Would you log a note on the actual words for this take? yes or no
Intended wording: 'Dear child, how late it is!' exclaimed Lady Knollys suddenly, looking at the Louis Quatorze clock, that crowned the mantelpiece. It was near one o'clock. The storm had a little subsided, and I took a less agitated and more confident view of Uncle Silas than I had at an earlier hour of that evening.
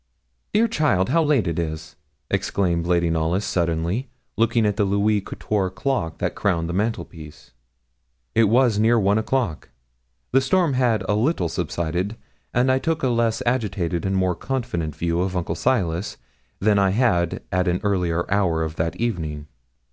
no